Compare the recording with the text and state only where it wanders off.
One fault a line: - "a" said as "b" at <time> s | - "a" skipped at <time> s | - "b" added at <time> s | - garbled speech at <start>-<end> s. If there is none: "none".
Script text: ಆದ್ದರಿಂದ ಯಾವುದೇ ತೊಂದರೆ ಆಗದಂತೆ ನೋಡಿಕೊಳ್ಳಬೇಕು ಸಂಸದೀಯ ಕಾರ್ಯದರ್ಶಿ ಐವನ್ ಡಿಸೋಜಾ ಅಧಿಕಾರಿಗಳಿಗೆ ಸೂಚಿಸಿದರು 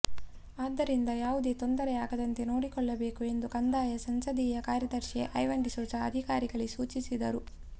- "ಎಂದು ಕಂದಾಯ" added at 3.2 s